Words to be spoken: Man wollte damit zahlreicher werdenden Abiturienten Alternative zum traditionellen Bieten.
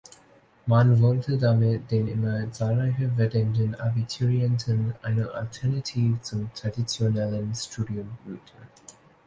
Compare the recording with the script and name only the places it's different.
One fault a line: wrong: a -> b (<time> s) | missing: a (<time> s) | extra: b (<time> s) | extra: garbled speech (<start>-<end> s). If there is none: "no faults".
extra: den immer (1.9 s)
extra: eine (5.0 s)
extra: Studium (7.5 s)